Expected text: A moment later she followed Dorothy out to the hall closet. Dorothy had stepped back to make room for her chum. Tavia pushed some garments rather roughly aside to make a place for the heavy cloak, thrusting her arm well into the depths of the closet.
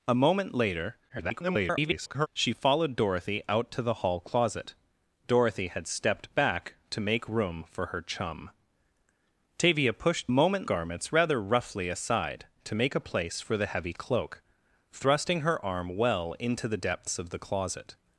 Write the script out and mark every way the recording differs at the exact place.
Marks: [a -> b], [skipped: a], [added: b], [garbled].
A moment later [garbled] she followed Dorothy out to the hall closet. Dorothy had stepped back to make room for her chum. Tavia pushed [some -> moment] garments rather roughly aside to make a place for the heavy cloak, thrusting her arm well into the depths of the closet.